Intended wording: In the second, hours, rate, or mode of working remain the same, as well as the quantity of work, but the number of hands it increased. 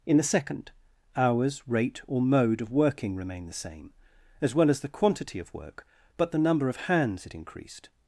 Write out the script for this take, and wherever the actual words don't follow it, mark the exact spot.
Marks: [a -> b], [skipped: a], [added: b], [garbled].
In the second, hours, rate, or mode of working remain the same, as well as the quantity of work, but the number of hands it increased.